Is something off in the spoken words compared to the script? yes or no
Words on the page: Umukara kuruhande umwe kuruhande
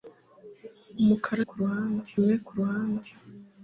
no